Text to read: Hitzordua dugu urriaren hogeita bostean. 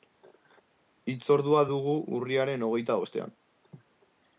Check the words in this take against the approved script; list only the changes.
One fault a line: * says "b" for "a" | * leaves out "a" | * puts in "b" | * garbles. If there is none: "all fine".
all fine